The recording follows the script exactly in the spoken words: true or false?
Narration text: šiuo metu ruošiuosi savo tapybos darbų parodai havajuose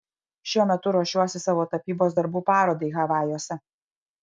true